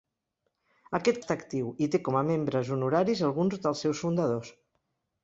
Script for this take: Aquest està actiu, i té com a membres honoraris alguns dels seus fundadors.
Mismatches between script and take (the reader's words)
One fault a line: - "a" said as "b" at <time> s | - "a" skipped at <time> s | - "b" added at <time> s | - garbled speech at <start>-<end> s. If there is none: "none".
none